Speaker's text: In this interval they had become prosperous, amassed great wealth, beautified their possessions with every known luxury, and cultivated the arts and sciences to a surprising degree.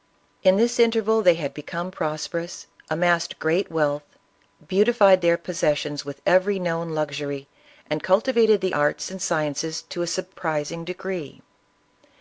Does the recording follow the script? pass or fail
pass